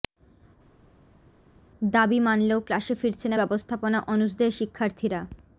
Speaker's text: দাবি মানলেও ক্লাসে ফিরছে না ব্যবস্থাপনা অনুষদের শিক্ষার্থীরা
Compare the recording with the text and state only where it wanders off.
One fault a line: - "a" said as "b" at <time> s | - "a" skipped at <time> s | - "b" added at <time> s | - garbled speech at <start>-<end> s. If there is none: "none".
none